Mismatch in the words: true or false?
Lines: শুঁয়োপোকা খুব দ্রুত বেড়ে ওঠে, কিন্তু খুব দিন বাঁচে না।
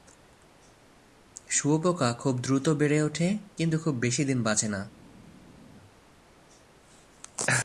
true